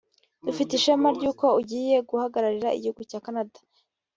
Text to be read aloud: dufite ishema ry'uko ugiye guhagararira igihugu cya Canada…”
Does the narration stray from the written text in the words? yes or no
no